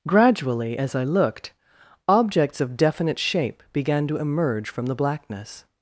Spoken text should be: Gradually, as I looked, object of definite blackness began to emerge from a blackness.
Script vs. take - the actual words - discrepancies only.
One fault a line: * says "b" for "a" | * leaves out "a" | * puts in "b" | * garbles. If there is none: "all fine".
* says "objects" for "object"
* says "shape" for "blackness"
* says "the" for "a"